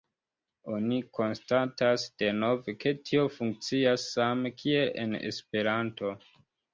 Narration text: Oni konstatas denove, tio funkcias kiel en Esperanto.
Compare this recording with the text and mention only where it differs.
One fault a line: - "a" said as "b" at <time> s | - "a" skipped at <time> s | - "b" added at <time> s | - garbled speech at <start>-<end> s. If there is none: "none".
- "ke" added at 2.8 s
- "same" added at 4.2 s